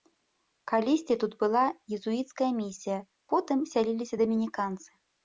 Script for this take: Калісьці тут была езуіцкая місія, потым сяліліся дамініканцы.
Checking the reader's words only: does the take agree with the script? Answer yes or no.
yes